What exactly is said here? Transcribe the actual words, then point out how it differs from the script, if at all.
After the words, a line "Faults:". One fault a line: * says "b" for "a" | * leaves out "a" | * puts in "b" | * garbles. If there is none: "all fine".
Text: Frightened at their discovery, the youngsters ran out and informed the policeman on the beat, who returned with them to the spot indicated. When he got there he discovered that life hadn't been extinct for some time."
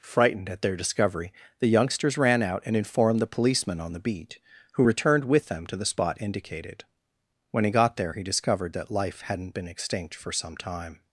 Frightened at their discovery, the youngsters ran out and informed the policeman on the beat, who returned with them to the spot indicated. When he got there he discovered that life hadn't been extinct for some time."
Faults:
all fine